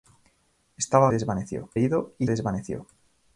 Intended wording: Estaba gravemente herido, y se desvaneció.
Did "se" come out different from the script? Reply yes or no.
yes